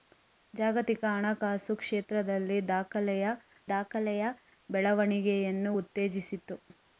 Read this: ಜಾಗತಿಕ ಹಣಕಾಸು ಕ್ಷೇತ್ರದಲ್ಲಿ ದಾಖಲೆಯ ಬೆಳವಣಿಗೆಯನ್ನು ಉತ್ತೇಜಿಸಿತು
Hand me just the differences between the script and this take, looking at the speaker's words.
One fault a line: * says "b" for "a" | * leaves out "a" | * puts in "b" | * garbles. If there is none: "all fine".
* puts in "ದಾಖಲೆಯ"